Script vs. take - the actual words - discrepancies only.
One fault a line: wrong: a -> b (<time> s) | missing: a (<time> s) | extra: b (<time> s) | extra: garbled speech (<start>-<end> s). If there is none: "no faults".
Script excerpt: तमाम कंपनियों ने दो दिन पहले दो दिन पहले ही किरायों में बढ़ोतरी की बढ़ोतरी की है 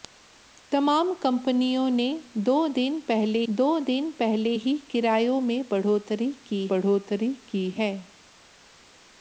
no faults